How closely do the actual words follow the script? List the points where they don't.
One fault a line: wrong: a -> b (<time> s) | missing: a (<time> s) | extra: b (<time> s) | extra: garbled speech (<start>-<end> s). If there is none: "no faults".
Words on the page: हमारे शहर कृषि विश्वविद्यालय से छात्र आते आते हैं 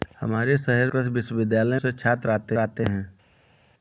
no faults